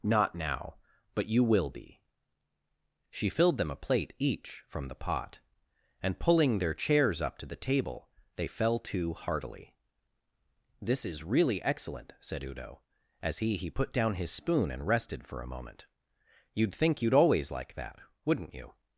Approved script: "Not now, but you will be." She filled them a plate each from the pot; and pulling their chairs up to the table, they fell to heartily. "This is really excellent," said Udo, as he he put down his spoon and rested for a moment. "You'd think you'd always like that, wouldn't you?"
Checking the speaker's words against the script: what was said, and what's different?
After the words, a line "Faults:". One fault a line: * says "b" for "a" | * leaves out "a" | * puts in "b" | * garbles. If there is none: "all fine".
"Not now, but you will be." She filled them a plate each from the pot; and pulling their chairs up to the table, they fell to heartily. "This is really excellent," said Udo, as he he put down his spoon and rested for a moment. "You'd think you'd always like that, wouldn't you?"
Faults:
all fine